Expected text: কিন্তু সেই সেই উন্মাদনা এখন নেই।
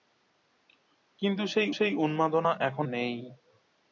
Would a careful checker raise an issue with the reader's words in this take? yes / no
no